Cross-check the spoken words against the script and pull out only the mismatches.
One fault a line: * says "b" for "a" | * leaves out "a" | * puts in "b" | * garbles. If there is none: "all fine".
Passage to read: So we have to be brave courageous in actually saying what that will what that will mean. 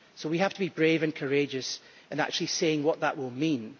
* puts in "and"
* leaves out "what that will"